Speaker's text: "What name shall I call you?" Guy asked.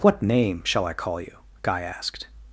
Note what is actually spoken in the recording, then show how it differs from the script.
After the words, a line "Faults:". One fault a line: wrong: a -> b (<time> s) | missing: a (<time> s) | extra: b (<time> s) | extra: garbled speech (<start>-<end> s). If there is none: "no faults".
"What name shall I call you?" Guy asked.
Faults:
no faults